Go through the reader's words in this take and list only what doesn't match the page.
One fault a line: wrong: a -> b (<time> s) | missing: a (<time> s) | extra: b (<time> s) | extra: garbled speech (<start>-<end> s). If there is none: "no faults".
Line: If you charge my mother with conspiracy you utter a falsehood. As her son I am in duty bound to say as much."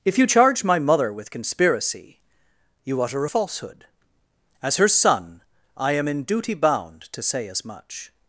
no faults